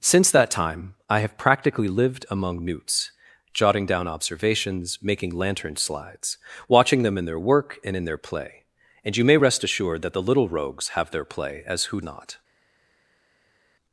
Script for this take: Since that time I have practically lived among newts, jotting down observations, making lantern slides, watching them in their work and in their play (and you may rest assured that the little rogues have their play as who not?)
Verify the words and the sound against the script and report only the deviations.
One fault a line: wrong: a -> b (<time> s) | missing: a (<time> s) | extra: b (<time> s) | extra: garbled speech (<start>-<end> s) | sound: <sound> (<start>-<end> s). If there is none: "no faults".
no faults